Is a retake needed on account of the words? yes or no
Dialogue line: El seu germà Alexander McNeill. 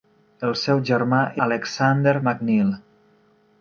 no